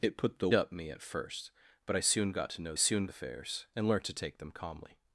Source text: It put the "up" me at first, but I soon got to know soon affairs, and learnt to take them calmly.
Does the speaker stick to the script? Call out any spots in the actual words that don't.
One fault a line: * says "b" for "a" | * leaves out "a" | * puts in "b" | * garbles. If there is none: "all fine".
all fine